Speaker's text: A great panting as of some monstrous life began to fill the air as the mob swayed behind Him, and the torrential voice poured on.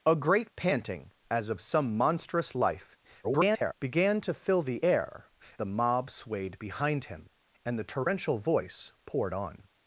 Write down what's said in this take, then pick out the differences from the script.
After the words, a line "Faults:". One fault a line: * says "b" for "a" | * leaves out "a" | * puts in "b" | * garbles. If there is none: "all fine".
A great panting as of some monstrous life [garbled] began to fill the air the mob swayed behind Him, and the torrential voice poured on.
Faults:
* garbles
* leaves out "as"